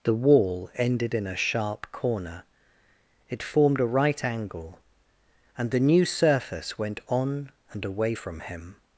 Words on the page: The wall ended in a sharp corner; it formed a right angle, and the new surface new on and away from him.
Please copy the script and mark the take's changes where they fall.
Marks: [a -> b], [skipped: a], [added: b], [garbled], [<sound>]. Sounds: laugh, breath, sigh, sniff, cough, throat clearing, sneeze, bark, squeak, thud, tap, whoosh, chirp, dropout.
The wall ended in a sharp corner; it formed a right angle, and the new surface [new -> went] on and away from him.